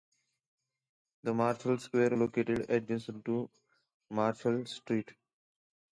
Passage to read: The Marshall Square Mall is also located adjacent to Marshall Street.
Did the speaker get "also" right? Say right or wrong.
wrong